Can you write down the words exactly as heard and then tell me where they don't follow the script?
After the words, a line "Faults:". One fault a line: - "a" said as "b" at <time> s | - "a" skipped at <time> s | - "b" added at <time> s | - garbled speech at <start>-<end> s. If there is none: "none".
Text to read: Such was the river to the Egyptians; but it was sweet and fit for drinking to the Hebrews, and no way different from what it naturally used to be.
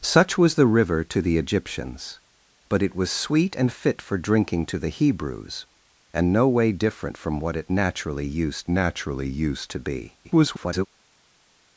Such was the river to the Egyptians; but it was sweet and fit for drinking to the Hebrews, and no way different from what it naturally used naturally used to be. [garbled]
Faults:
- "naturally used" added at 8.7 s
- garbled speech at 10.2-10.9 s